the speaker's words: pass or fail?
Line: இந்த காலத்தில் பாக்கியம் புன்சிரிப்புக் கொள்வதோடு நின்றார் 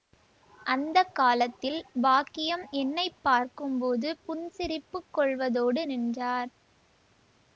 fail